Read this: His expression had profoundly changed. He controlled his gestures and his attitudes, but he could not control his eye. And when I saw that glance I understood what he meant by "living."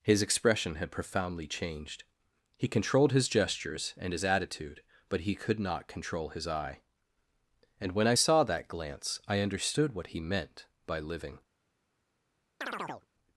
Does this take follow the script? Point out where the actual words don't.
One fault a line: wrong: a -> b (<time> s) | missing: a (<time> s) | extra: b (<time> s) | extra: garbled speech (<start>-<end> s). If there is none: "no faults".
wrong: attitudes -> attitude (4.2 s)